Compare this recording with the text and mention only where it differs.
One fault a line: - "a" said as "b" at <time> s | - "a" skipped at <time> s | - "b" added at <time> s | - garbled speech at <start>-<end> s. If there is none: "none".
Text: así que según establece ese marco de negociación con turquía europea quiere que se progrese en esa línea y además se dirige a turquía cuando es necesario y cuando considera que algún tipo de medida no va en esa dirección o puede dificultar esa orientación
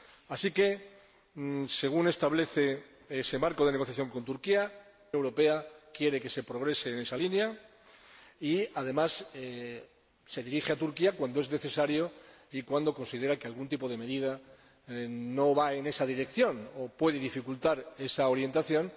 none